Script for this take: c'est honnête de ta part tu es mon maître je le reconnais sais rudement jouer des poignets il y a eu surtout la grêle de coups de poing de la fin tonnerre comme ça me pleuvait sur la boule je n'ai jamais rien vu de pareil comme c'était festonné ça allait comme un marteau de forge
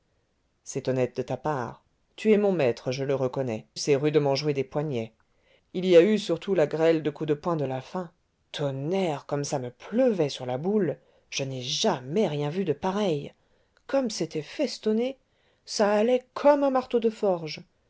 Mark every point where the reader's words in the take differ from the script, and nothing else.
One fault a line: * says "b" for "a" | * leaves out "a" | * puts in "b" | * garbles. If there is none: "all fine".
all fine